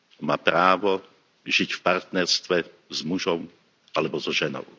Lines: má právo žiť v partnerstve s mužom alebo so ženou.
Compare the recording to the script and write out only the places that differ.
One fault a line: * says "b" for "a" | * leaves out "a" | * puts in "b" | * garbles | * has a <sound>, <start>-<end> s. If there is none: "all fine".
all fine